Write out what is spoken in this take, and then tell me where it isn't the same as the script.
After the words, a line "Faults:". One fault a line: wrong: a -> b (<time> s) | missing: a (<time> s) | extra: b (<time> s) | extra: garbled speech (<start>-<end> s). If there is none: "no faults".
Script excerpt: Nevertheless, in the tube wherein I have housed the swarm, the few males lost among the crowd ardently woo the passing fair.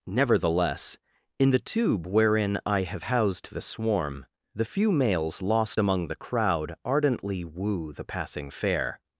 Nevertheless, in the tube wherein I have housed the swarm, the few males lost among the crowd ardently woo the passing fair.
Faults:
no faults